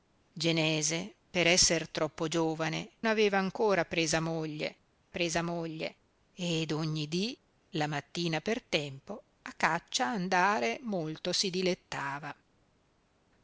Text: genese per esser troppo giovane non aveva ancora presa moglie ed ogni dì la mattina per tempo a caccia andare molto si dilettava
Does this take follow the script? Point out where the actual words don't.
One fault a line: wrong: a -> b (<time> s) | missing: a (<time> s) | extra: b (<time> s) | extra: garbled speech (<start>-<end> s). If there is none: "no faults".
missing: non (3.0 s)
extra: presa moglie (5.1 s)